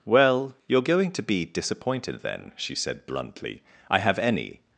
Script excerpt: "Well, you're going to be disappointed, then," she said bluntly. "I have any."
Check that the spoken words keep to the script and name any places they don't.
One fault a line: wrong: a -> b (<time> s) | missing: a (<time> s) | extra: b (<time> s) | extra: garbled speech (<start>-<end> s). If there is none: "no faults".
no faults